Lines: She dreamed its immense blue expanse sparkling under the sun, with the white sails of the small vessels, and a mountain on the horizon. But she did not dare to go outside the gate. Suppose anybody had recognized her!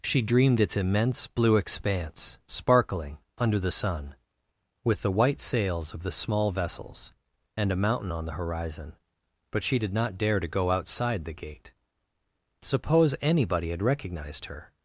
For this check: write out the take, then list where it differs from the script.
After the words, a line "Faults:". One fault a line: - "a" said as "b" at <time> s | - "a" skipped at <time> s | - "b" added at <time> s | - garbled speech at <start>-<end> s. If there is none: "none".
She dreamed its immense blue expanse sparkling under the sun, with the white sails of the small vessels, and a mountain on the horizon. But she did not dare to go outside the gate. Suppose anybody had recognized her!
Faults:
none